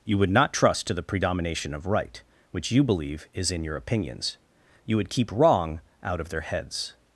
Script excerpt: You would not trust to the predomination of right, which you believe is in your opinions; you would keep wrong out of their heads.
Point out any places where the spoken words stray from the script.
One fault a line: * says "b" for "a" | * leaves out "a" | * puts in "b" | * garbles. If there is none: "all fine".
all fine